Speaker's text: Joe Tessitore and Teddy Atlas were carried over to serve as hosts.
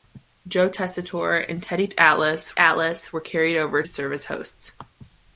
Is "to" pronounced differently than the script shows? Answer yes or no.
yes